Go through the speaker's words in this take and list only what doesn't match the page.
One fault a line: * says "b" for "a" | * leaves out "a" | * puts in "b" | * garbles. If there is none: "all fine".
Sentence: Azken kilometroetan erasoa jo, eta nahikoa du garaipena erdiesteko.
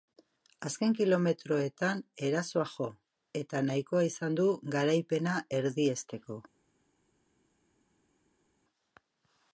* puts in "izan"